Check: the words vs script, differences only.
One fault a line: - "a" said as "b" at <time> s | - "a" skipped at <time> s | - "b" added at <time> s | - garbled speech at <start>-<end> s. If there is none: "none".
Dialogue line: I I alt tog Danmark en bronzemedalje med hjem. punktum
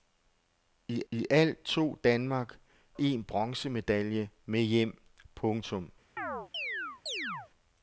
none